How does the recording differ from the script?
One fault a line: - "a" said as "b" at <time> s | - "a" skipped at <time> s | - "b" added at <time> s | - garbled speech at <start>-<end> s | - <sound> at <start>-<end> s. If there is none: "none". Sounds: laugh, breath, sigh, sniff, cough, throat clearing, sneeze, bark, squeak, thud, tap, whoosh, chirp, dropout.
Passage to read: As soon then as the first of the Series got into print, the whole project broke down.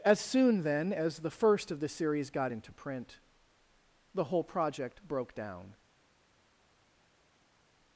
none